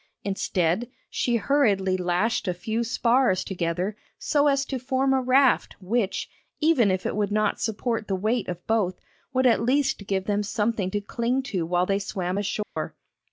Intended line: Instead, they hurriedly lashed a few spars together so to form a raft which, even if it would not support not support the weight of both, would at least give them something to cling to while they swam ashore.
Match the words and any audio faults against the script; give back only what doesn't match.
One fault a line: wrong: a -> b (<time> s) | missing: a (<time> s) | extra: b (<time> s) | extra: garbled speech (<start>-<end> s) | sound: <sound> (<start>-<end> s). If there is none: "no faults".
wrong: they -> she (1.1 s)
extra: as (4.5 s)
missing: not support (8.1 s)
sound: dropout (12.6-12.8 s)